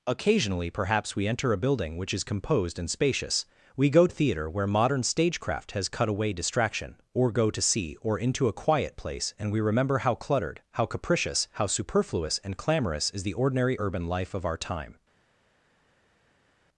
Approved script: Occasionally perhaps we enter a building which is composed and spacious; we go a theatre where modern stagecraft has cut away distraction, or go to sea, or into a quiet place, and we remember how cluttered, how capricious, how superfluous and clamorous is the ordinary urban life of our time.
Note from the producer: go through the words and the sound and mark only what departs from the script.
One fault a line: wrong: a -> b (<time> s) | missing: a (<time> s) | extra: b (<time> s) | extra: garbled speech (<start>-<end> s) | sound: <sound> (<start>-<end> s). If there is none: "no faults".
no faults